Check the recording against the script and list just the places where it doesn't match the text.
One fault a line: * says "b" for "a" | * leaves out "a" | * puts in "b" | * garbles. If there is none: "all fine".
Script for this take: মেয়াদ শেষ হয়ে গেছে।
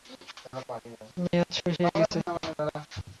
all fine